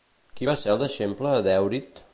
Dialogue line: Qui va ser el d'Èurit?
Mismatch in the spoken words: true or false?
true